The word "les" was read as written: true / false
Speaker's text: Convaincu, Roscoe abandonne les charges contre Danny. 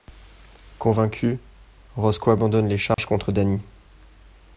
true